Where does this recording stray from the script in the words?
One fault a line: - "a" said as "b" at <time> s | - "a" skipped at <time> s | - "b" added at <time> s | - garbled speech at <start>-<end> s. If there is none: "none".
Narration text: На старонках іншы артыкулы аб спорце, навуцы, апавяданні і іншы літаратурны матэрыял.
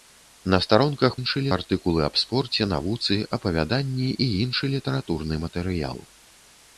none